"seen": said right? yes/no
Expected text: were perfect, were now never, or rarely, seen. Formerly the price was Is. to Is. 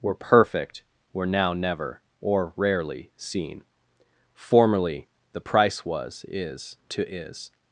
yes